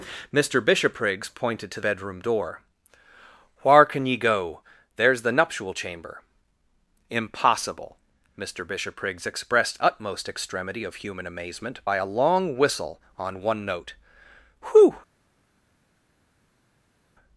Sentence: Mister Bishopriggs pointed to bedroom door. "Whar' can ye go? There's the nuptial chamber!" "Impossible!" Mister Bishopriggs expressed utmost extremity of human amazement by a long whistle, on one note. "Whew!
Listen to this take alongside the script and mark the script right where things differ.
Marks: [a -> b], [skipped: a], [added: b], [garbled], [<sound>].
Mister Bishopriggs pointed to bedroom door. "Whar' can ye go? There's the nuptial chamber!" "Impossible!" Mister Bishopriggs expressed utmost extremity of human amazement by a long whistle, on one note. "Whew!